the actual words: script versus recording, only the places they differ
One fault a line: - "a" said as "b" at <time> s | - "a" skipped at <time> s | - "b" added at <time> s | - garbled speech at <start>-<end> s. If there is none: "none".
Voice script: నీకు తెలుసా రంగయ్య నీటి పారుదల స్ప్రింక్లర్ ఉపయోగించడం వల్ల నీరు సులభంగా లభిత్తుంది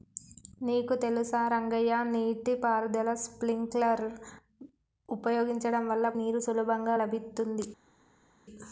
none